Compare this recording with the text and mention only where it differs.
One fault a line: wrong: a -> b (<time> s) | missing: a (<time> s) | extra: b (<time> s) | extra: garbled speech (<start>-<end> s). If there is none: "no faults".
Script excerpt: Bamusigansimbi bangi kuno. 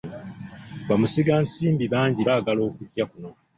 extra: baagala okujja (2.3 s)